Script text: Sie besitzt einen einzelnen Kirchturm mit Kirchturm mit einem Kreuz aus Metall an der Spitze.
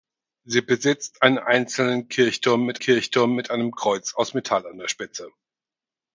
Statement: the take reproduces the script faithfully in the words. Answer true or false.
true